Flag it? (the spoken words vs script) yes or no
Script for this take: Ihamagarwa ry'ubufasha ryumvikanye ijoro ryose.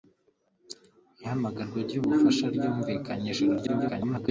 yes